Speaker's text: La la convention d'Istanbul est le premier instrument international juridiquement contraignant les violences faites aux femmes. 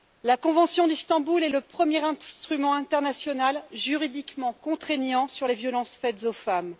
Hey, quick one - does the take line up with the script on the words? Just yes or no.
no